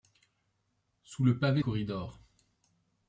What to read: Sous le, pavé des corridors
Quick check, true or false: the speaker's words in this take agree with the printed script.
false